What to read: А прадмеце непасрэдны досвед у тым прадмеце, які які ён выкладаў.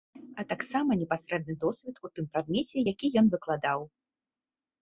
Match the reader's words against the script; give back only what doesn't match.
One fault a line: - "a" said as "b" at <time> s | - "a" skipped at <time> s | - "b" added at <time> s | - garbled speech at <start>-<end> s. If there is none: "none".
- "прадмеце" said as "таксама" at 0.5 s
- "які" skipped at 3.1 s